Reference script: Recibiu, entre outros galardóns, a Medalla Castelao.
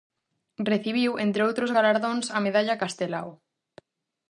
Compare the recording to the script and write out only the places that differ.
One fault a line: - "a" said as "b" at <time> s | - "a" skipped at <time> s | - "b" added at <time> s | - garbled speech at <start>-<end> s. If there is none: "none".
none